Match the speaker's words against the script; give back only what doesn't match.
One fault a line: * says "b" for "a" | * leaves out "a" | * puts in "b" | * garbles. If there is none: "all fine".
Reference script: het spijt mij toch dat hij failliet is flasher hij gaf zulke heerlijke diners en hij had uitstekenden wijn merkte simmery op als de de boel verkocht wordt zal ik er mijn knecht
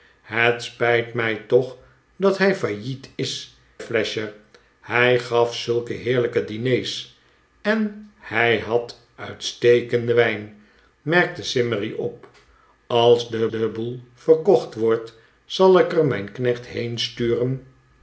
all fine